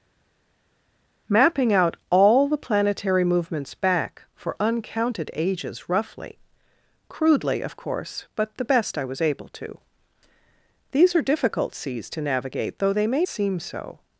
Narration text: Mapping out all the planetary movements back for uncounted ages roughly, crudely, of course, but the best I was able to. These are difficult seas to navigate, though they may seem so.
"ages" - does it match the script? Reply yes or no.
yes